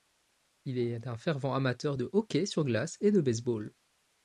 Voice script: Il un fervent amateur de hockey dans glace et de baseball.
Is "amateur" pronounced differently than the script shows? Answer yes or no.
no